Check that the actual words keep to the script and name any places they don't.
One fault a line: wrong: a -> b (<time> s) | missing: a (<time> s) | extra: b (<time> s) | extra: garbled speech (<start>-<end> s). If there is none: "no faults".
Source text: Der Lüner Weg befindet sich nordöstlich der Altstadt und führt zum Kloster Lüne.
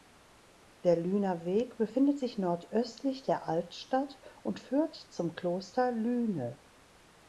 no faults